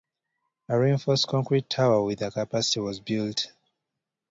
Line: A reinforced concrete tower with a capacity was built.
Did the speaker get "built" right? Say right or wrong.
right